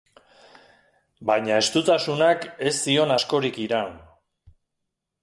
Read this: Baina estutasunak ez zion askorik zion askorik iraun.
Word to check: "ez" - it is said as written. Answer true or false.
true